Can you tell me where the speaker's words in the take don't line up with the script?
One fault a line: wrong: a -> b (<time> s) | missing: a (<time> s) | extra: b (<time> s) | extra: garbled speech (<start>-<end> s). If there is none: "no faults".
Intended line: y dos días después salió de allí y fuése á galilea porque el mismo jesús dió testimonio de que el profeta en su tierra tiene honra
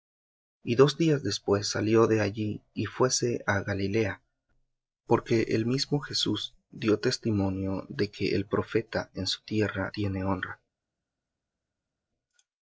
no faults